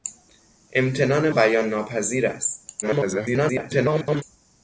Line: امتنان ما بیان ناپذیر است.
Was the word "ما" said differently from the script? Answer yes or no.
yes